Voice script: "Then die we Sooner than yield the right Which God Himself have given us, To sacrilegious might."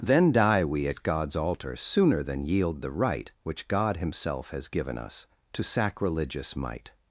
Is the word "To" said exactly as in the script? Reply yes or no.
yes